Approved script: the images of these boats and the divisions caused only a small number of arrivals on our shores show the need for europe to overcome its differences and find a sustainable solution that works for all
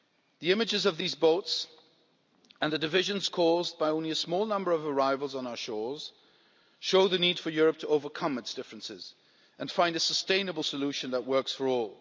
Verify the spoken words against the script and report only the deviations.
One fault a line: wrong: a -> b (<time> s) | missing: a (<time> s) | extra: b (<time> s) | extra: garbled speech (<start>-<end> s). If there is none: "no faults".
extra: by (3.8 s)